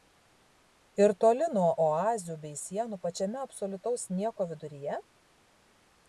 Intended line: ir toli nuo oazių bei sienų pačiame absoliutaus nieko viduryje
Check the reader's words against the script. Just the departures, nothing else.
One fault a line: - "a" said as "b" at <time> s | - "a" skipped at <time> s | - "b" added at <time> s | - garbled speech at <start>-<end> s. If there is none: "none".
none